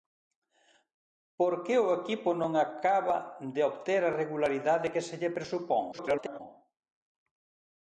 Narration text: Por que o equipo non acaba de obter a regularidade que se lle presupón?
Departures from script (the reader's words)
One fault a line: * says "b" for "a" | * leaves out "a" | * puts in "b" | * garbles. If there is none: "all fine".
* garbles